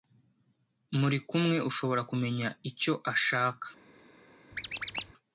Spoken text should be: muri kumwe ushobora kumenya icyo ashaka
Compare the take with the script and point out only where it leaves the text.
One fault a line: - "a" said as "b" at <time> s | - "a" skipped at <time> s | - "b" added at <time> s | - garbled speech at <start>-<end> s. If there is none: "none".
none